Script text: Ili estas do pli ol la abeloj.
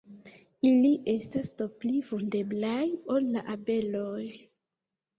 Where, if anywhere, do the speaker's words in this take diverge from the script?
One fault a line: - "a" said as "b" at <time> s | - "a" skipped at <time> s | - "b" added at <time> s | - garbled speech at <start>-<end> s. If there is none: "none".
- "vundeblaj" added at 2.1 s